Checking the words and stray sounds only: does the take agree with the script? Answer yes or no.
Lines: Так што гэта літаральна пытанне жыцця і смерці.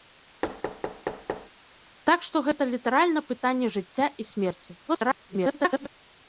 no